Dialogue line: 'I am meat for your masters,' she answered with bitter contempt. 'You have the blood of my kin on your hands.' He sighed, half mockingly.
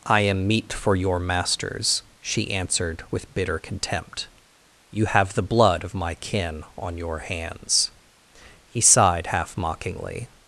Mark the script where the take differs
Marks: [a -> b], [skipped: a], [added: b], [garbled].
'I am meat for your masters,' she answered with bitter contempt. 'You have the blood of my kin on your hands.' He sighed, half mockingly.